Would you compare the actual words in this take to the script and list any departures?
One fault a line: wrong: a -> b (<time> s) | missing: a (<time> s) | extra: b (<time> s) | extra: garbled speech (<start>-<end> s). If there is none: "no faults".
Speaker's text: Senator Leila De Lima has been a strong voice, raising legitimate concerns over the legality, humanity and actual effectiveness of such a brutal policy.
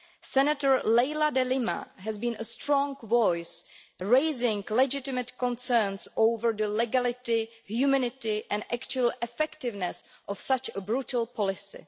no faults